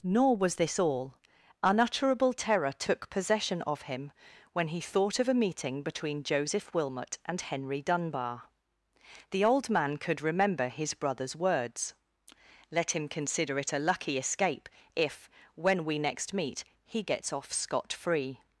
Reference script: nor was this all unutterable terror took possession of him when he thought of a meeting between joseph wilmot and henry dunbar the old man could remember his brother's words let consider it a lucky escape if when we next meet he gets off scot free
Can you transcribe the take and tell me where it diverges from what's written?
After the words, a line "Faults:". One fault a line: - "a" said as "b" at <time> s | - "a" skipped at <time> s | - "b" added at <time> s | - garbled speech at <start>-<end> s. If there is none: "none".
nor was this all unutterable terror took possession of him when he thought of a meeting between joseph wilmot and henry dunbar the old man could remember his brother's words let him consider it a lucky escape if when we next meet he gets off scot free
Faults:
- "him" added at 12.9 s